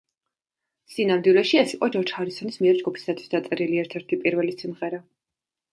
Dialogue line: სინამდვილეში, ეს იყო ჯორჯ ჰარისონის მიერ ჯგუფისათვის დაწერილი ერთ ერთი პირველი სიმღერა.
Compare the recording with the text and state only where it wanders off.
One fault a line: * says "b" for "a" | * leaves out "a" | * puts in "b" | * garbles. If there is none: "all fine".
all fine